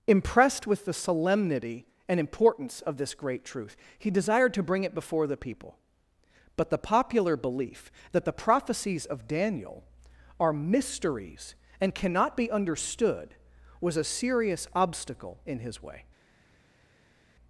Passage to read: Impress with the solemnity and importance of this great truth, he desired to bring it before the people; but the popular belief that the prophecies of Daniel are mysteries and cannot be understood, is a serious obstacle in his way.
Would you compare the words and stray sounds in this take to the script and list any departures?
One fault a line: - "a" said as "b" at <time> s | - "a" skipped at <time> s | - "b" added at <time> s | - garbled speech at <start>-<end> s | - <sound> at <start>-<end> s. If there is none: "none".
- "Impress" said as "Impressed" at 0.1 s
- "is" said as "was" at 13.8 s